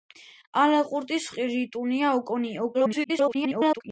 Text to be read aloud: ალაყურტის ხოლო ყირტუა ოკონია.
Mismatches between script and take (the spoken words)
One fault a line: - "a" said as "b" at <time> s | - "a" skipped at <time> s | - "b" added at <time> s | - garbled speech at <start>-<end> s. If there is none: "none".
- "ხოლო" skipped at 1.3 s
- garbled speech at 2.7-3.8 s